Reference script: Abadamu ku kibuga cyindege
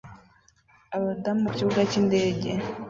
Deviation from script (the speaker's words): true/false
false